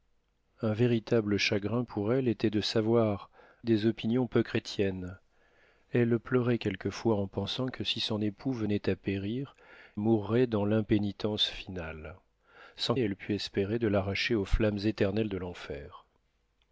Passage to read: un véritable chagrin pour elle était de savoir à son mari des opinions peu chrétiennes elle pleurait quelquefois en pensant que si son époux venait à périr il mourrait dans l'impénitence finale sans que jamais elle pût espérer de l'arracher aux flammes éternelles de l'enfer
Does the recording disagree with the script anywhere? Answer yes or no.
yes